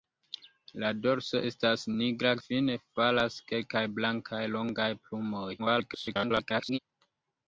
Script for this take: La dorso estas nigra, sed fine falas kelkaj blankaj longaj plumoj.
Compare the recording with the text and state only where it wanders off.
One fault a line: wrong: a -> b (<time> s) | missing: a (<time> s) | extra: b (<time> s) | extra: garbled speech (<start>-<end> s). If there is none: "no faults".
missing: sed (2.3 s)
extra: garbled speech (5.6-6.8 s)